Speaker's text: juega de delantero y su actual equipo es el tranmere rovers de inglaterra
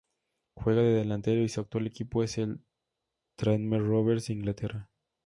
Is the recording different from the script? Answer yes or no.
no